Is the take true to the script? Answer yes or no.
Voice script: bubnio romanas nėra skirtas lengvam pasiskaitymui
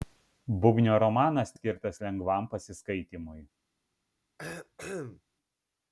no